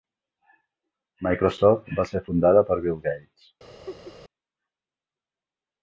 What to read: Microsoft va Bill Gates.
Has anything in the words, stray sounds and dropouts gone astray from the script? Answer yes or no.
yes